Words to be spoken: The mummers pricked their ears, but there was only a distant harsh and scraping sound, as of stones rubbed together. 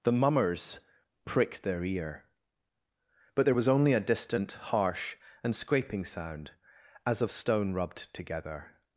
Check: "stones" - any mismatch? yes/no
yes